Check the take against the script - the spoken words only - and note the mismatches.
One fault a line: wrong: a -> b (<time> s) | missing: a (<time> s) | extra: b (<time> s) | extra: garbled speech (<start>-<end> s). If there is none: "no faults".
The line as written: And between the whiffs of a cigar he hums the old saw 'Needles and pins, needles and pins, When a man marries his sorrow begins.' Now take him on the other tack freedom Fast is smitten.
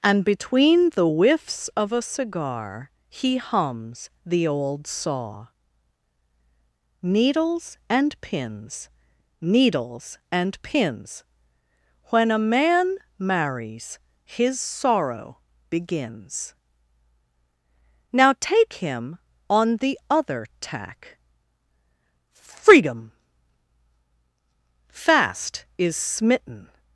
no faults